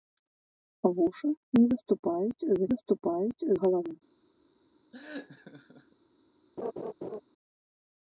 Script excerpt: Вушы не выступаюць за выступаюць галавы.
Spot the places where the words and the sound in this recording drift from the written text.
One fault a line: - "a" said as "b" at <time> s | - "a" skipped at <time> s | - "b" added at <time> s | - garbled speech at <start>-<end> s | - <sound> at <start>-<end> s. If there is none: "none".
- laugh at 4.9-6.0 s
- laugh at 6.6-7.2 s